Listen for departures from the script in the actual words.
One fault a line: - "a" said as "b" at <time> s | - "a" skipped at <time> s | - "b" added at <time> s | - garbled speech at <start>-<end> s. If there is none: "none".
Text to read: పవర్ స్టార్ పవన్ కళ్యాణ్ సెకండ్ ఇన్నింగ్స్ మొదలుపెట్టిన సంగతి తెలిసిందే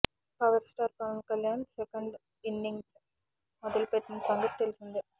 none